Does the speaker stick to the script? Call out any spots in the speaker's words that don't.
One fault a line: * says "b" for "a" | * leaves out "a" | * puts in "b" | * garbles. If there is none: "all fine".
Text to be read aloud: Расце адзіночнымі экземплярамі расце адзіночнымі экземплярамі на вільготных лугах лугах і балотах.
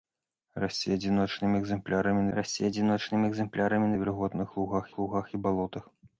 all fine